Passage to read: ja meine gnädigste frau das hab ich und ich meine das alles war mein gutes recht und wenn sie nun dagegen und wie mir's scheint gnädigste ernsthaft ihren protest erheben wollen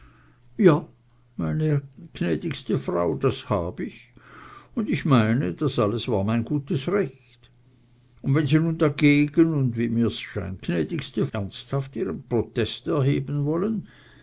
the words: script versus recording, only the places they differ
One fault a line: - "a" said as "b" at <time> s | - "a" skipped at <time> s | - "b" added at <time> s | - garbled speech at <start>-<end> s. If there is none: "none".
none